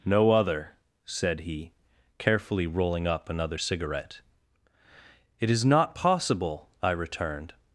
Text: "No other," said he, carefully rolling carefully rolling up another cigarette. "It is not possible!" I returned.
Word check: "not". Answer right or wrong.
right